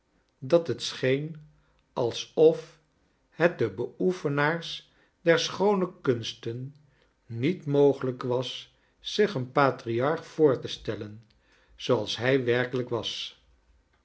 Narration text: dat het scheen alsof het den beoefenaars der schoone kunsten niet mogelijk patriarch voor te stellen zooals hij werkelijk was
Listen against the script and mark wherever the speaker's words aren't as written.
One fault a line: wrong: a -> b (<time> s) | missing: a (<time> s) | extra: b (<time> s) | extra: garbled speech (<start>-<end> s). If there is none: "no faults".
extra: was zich een (8.2 s)